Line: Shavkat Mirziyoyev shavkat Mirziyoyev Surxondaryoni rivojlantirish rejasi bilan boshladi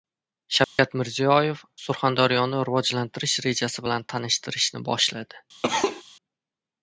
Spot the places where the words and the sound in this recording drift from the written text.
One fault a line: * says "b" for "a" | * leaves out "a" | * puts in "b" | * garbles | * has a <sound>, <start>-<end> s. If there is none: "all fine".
* has a dropout, 0.6-0.8 s
* leaves out "shavkat Mirziyoyev"
* puts in "tanishtirishni"
* has a cough, 5.6-6.0 s